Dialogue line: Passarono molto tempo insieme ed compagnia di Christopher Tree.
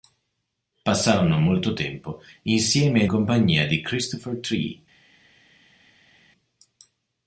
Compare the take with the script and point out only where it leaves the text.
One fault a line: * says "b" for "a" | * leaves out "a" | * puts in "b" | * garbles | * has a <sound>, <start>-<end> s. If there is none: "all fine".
all fine